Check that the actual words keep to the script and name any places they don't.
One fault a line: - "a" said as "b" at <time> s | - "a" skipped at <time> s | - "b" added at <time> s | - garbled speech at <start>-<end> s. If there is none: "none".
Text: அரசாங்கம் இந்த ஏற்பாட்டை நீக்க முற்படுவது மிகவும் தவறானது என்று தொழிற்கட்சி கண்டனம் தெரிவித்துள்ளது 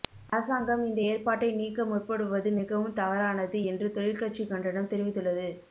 none